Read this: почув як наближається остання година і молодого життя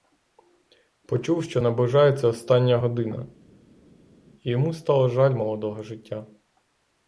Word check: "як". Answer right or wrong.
wrong